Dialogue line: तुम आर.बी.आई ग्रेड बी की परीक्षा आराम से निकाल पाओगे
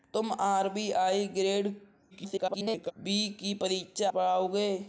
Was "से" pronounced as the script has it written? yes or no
no